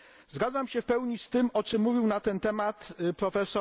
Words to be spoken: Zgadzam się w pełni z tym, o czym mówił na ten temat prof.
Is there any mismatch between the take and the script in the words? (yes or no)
no